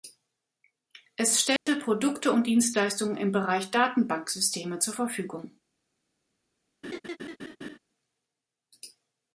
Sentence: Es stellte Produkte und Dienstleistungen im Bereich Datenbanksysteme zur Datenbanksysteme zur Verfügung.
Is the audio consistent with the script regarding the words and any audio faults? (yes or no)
no